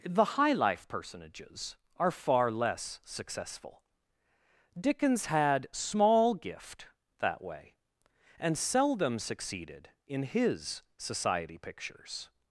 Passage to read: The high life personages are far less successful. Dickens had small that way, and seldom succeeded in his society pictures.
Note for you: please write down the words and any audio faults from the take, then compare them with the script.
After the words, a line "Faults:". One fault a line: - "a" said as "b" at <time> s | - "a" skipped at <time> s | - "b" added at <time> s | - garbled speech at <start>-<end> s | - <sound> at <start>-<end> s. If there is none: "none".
The high life personages are far less successful. Dickens had small gift that way, and seldom succeeded in his society pictures.
Faults:
- "gift" added at 6.3 s